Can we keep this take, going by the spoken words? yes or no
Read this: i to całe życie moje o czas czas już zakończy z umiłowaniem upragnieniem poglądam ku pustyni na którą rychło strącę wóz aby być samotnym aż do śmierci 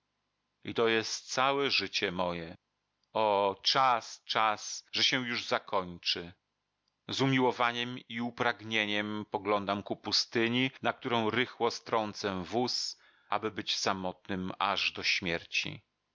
no